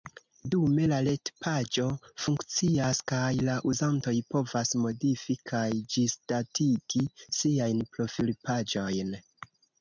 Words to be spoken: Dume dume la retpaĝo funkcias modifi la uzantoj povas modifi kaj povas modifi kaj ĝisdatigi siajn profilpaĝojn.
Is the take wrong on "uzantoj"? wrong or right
right